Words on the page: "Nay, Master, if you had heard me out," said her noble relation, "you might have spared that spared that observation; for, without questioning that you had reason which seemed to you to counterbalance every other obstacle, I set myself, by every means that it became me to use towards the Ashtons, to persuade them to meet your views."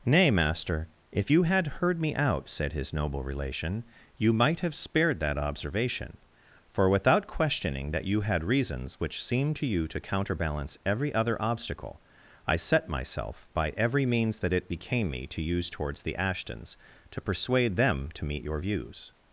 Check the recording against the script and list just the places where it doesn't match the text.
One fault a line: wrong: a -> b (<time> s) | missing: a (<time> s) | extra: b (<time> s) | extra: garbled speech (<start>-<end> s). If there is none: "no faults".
wrong: her -> his (2.7 s)
missing: spared that (5.4 s)
wrong: reason -> reasons (8.4 s)